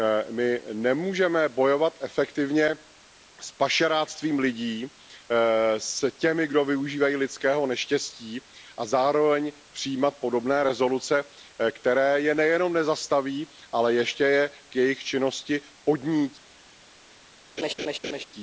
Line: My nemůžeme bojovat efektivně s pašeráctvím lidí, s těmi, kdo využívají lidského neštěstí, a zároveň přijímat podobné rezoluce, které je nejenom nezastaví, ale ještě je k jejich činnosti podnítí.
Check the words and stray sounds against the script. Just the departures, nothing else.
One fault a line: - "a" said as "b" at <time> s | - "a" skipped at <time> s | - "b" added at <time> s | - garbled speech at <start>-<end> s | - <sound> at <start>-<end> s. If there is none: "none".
- laugh at 17.6-18.2 s